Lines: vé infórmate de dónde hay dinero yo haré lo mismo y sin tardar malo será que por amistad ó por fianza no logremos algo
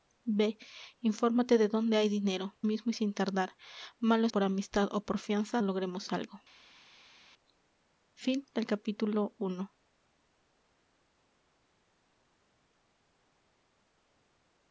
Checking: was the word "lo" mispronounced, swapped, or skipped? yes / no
yes